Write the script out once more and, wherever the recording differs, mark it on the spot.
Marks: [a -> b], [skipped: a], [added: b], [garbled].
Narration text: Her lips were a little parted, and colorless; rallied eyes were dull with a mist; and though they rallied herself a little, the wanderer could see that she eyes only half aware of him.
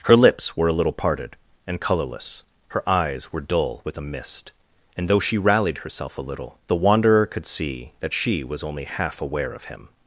Her lips were a little parted, and colorless; [rallied -> her] eyes were dull with a mist; and though [they -> she] rallied herself a little, the wanderer could see that she [eyes -> was] only half aware of him.